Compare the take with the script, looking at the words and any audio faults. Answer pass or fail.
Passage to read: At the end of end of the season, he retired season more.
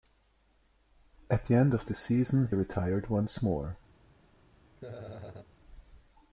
fail